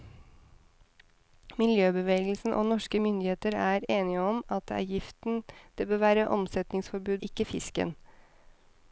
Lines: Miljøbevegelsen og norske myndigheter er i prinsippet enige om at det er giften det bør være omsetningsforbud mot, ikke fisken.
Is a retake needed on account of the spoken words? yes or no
yes